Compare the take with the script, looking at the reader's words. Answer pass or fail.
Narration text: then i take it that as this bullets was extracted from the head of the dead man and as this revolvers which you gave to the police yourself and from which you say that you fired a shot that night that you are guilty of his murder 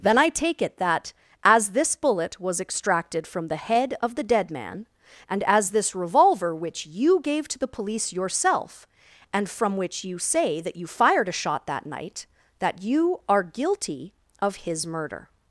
fail